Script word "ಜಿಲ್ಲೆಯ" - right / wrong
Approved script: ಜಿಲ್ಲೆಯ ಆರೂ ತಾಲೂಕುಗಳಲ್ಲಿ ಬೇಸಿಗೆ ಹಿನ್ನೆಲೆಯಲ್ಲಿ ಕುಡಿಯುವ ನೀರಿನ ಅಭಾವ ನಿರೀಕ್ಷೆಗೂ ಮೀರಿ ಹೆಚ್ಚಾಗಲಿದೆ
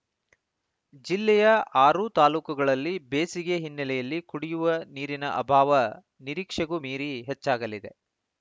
right